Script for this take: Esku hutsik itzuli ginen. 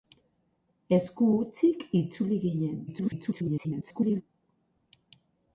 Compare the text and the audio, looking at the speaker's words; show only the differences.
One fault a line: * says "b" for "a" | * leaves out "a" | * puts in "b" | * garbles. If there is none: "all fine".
* garbles